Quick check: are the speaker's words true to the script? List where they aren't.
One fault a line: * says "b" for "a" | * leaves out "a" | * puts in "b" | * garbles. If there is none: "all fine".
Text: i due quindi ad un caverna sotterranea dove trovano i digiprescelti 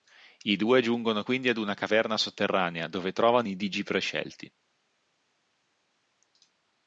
* puts in "giungono"
* says "una" for "un"